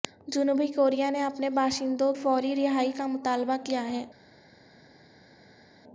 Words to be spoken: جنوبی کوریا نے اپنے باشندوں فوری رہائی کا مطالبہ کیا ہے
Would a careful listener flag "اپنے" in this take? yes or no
no